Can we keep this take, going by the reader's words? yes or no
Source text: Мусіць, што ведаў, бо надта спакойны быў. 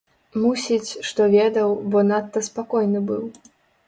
yes